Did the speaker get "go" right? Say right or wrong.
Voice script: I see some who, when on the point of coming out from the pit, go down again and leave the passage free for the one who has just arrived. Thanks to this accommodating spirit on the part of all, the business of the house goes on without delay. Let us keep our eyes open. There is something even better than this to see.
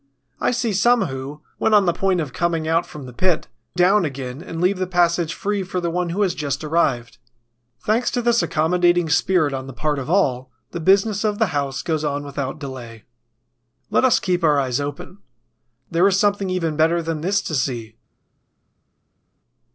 wrong